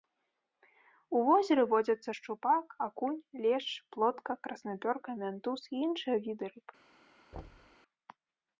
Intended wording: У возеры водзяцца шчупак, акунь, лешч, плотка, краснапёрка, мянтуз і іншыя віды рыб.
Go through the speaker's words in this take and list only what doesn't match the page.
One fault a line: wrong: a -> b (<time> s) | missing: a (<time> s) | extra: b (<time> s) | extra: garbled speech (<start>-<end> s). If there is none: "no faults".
no faults